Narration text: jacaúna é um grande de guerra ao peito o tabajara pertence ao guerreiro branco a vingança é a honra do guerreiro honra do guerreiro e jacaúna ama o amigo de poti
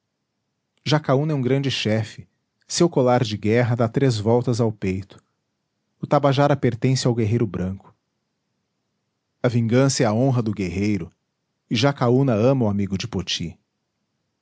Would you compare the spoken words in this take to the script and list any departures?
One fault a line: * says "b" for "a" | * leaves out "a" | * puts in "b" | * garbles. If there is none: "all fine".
* puts in "chefe seu colar"
* puts in "dá três voltas"
* leaves out "honra do guerreiro"